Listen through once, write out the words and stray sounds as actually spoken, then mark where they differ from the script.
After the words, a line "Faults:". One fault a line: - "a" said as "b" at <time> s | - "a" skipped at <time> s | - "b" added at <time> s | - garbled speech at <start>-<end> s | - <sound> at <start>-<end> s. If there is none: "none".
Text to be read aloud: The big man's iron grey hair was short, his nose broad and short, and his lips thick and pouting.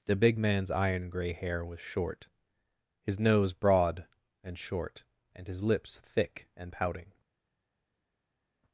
The big man's iron grey hair was short, his nose broad and short, and his lips thick and pouting.
Faults:
none